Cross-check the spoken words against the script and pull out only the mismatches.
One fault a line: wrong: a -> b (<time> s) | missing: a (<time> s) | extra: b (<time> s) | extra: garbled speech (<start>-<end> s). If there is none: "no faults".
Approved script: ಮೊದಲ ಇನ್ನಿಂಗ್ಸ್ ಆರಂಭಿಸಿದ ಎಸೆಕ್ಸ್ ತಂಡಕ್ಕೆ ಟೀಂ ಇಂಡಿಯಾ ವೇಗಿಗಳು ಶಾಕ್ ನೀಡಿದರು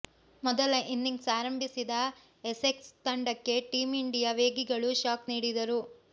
no faults